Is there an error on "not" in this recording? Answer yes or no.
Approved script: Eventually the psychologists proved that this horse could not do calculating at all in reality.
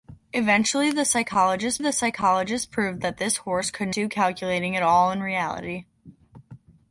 yes